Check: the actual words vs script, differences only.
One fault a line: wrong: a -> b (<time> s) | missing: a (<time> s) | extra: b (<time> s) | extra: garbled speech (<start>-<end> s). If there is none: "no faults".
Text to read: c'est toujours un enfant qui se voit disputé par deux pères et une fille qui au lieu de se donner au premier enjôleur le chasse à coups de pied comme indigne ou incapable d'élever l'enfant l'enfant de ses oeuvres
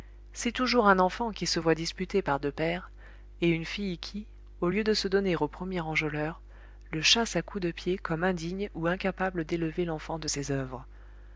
missing: l'enfant (10.2 s)